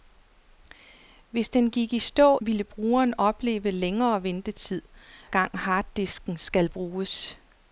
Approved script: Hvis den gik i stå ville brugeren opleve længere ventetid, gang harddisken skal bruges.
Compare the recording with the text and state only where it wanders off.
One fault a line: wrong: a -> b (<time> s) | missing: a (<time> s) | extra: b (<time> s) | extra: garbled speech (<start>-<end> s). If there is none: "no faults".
no faults